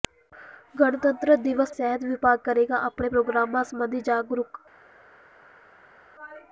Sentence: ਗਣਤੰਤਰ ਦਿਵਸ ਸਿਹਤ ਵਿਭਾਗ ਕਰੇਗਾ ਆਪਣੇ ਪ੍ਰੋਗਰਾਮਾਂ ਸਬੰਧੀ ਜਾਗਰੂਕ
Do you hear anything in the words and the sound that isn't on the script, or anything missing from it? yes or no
no